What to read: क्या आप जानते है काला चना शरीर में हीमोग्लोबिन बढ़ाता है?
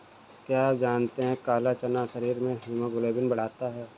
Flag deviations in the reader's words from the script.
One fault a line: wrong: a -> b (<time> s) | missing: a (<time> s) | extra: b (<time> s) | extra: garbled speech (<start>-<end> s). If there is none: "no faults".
no faults